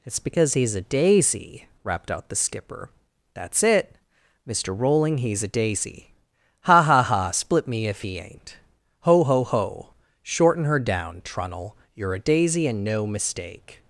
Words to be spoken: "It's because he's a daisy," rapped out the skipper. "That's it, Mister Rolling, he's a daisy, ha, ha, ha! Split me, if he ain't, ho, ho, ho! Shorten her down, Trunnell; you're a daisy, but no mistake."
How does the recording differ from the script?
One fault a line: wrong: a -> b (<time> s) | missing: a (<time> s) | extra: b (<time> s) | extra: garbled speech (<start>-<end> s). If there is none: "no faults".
wrong: but -> and (12.7 s)